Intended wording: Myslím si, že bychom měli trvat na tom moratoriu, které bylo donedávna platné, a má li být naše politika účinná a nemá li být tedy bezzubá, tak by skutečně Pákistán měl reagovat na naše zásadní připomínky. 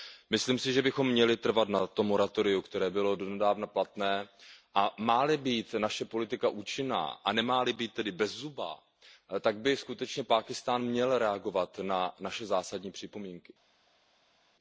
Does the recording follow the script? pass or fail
pass